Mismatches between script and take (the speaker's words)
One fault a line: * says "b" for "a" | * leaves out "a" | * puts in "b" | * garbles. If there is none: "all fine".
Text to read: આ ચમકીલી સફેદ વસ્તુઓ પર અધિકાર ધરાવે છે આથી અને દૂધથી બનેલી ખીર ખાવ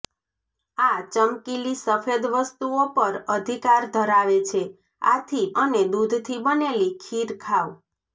all fine